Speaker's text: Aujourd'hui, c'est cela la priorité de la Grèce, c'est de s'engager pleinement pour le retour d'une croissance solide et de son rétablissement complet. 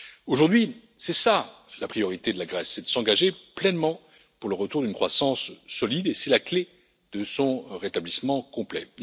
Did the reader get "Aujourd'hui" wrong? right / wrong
right